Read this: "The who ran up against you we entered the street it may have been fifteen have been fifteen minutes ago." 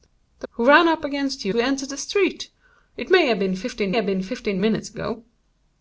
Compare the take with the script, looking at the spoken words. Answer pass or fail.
pass